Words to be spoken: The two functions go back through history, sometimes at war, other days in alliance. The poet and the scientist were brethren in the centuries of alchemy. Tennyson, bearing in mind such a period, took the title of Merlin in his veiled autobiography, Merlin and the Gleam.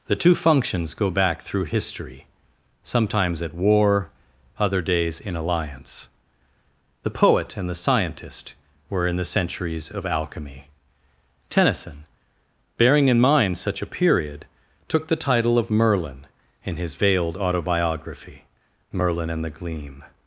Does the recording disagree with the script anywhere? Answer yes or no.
yes